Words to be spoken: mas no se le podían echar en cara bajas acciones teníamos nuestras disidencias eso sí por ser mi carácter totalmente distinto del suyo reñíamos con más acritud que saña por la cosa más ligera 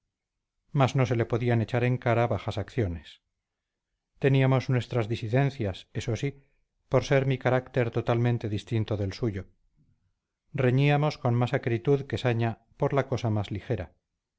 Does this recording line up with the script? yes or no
yes